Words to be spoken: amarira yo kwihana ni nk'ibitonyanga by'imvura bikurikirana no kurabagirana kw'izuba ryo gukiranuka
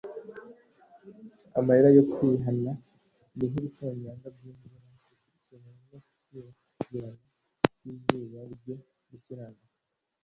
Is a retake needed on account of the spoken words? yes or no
no